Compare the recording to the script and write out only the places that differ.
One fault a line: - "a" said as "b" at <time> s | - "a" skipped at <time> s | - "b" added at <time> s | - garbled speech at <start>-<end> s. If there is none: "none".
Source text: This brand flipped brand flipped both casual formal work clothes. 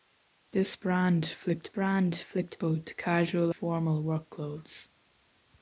none